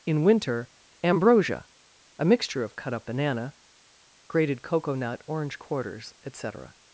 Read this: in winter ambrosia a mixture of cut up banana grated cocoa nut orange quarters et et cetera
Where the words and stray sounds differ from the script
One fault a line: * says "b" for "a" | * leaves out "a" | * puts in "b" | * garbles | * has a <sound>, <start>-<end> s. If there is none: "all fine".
* leaves out "et"